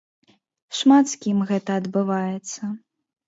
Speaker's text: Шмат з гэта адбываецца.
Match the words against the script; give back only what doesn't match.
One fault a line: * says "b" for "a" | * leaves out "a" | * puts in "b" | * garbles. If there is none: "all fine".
* puts in "кім"